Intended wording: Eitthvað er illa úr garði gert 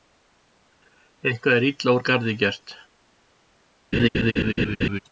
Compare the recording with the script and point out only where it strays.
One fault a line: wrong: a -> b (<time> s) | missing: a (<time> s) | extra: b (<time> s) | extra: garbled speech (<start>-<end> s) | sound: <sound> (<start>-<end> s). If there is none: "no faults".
sound: laugh (3.9-5.0 s)